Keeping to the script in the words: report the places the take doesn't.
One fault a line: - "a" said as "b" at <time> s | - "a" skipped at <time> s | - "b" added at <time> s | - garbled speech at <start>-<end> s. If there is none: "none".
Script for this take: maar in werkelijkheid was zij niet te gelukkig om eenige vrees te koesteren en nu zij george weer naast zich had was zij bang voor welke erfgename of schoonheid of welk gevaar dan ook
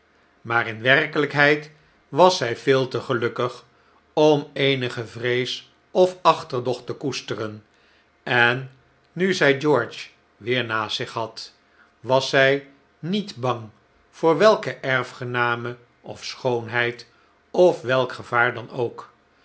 - "niet" said as "veel" at 2.6 s
- "of achterdocht" added at 5.9 s
- "niet" added at 13.0 s